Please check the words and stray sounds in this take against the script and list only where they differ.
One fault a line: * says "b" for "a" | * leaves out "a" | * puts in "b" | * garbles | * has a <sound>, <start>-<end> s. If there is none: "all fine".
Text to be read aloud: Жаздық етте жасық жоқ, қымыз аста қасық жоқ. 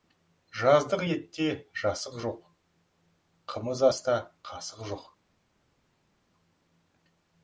all fine